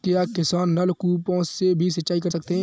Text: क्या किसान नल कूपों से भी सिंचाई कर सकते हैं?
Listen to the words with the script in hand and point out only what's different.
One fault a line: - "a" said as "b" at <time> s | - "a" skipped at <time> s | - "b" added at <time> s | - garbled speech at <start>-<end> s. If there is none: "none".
none